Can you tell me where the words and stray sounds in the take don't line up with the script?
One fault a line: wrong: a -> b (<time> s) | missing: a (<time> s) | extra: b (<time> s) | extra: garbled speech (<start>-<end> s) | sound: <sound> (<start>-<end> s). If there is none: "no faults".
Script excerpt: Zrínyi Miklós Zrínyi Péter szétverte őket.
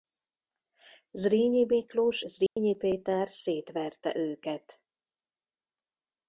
sound: dropout (2.5-2.6 s)